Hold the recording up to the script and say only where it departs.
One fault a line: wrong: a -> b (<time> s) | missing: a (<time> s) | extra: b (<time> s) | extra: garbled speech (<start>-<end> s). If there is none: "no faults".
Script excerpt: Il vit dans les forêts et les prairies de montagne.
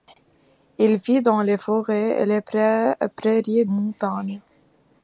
missing: de (3.7 s)